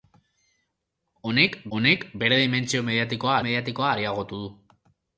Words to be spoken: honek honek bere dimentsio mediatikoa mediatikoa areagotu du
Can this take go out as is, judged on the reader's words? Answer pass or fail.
pass